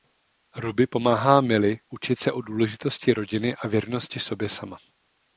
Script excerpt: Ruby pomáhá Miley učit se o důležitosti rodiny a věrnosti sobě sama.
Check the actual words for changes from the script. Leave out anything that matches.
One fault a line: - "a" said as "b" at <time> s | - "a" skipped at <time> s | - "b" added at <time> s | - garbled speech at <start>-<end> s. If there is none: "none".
none